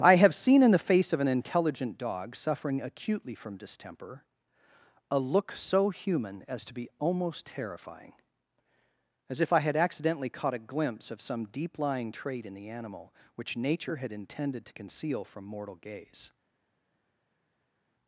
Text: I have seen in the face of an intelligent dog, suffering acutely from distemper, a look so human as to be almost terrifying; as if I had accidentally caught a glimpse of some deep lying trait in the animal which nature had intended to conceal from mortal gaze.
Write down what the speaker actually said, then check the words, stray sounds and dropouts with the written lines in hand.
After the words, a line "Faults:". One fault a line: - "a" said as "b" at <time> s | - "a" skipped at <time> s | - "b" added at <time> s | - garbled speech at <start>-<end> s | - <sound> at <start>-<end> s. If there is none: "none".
I have seen in the face of an intelligent dog, suffering acutely from distemper, a look so human as to be almost terrifying; as if I had accidentally caught a glimpse of some deep lying trait in the animal which nature had intended to conceal from mortal gaze.
Faults:
none